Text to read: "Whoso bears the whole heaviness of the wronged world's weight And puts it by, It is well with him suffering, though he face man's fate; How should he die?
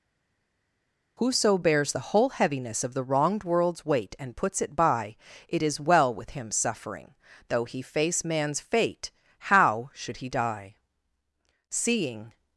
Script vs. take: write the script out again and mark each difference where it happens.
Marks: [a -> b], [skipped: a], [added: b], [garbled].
"Whoso bears the whole heaviness of the wronged world's weight And puts it by, It is well with him suffering, though he face man's fate; How should he die? [added: Seeing]